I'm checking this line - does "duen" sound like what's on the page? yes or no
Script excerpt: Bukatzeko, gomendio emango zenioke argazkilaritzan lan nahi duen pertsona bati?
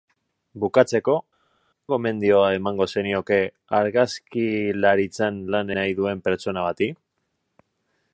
yes